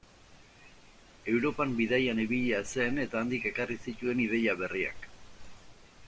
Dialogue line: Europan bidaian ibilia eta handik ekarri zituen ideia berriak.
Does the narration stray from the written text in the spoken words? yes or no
yes